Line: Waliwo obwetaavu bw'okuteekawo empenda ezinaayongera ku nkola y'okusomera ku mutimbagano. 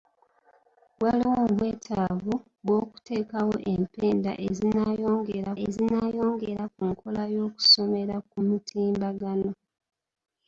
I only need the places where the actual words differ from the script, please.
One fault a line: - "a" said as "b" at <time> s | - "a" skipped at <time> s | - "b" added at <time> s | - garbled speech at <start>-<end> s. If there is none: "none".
- "ezinaayongera" added at 5.6 s